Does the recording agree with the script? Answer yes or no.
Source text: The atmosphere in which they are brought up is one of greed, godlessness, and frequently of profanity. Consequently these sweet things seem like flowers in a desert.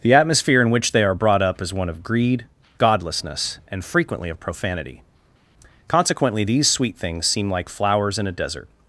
yes